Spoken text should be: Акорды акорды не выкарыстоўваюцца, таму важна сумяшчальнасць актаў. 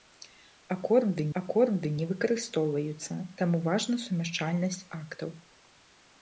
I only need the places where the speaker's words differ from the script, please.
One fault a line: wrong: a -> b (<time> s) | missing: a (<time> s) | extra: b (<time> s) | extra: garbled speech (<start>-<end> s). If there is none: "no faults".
no faults